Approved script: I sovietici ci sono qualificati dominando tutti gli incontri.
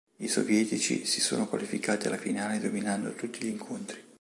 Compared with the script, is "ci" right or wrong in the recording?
wrong